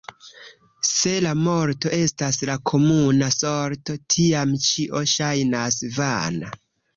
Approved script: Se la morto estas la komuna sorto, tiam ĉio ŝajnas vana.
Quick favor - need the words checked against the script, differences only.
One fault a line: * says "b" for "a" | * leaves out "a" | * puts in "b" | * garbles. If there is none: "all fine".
all fine